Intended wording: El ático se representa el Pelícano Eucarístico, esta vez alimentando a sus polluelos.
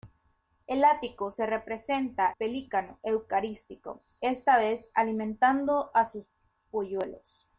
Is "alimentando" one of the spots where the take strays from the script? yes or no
no